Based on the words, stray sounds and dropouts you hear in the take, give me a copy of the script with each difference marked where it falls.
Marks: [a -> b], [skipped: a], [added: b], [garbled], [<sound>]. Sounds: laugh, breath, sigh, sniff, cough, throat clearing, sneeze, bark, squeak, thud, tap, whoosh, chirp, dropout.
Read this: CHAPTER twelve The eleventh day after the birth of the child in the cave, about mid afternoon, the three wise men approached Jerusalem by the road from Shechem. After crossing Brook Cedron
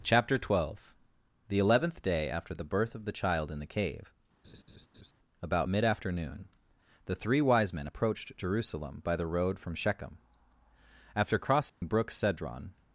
CHAPTER twelve The eleventh day after the birth of the child in the cave, [laugh] about mid afternoon, the three wise men approached Jerusalem by the road from Shechem. After crossing [dropout] Brook Cedron